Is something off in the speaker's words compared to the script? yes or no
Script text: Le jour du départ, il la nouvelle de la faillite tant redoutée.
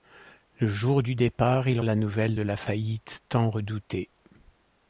no